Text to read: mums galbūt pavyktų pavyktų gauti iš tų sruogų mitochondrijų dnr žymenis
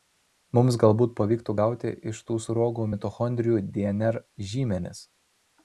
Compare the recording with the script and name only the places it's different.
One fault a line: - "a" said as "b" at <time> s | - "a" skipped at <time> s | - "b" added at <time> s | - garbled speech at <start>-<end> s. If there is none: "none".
- "pavyktų" skipped at 1.6 s